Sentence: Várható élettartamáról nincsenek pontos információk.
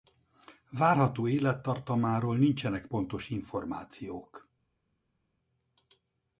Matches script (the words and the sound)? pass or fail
pass